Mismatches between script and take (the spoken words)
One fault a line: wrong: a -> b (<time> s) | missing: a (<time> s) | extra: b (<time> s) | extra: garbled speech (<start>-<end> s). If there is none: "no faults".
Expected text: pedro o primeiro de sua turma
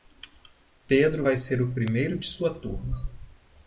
extra: vai ser (1.2 s)